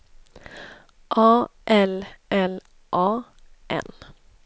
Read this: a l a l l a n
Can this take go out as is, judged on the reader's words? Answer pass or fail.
fail